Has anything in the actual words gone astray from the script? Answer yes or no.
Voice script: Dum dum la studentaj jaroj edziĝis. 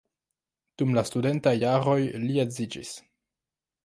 yes